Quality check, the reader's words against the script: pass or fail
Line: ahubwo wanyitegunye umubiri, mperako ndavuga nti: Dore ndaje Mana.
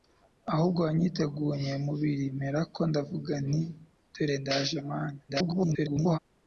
fail